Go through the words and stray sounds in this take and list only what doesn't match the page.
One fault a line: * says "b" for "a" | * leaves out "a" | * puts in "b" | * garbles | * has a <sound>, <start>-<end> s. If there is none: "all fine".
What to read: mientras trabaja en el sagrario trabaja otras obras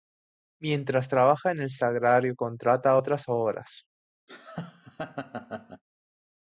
* says "contrata" for "trabaja"
* has a laugh, 4.3-5.8 s